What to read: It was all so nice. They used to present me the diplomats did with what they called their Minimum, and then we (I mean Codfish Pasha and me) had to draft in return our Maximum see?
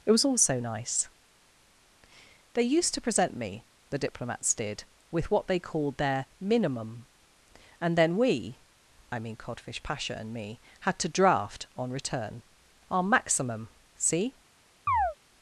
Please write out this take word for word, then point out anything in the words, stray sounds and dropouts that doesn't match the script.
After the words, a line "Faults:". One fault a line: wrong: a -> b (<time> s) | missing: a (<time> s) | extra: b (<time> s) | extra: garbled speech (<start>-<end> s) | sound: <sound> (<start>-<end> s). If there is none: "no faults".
It was all so nice. They used to present me the diplomats did with what they called their Minimum, and then we (I mean Codfish Pasha and me) had to draft on return our Maximum see?
Faults:
wrong: in -> on (11.8 s)
sound: chirp (14.9-15.2 s)